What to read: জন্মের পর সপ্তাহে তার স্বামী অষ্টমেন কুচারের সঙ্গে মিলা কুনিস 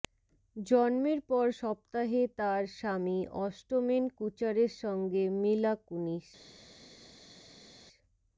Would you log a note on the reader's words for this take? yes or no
no